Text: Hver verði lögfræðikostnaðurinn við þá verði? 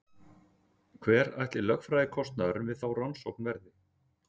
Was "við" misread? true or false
false